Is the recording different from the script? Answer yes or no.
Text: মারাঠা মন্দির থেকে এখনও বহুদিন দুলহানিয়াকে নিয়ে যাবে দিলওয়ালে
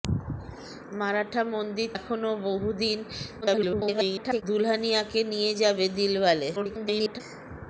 yes